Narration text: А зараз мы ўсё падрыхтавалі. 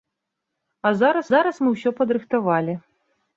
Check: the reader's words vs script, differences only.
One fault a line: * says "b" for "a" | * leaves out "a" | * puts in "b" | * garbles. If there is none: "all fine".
* puts in "зараз"